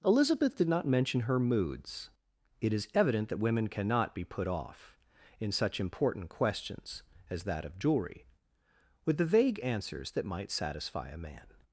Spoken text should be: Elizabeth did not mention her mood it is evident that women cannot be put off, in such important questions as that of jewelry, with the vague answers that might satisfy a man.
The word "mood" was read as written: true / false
false